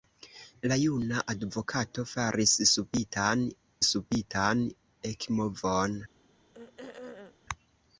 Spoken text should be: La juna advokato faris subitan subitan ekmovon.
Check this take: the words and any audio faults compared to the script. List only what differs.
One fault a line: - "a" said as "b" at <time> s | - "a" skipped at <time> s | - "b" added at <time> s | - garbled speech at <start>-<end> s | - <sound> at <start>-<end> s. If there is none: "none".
- throat clearing at 6.5-7.4 s